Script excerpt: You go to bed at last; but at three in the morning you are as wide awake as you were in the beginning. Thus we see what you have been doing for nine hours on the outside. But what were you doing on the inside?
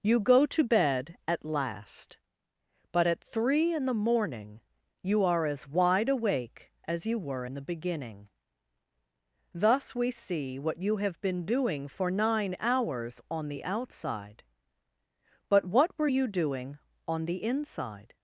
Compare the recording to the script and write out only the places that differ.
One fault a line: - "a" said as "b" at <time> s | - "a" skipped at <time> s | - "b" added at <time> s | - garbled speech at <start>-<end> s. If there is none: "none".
none